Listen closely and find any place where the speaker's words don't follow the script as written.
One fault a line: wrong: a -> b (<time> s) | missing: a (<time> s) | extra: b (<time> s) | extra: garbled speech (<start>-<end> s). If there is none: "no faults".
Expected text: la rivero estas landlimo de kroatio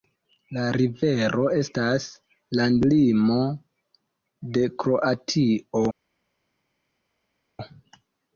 no faults